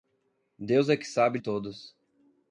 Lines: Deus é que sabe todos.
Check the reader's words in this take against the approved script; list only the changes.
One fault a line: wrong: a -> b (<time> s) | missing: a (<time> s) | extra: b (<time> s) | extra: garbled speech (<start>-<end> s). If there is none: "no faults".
no faults